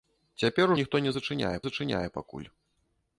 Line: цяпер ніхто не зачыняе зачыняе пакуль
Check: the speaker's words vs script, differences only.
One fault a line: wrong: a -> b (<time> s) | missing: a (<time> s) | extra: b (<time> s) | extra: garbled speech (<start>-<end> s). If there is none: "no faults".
no faults